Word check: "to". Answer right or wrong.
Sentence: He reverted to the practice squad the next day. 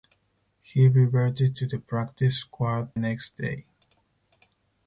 right